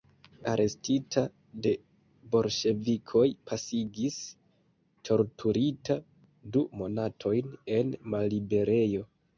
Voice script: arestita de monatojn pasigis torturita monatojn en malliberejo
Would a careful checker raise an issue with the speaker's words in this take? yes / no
yes